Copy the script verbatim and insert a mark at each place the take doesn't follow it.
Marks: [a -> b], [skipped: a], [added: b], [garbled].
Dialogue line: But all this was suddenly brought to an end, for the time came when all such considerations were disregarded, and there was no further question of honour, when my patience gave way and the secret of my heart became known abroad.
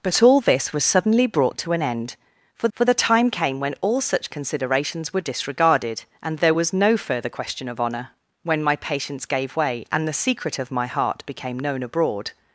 But all this was suddenly brought to an end, for [added: for] the time came when all such considerations were disregarded, and there was no further question of honour, when my patience gave way and the secret of my heart became known abroad.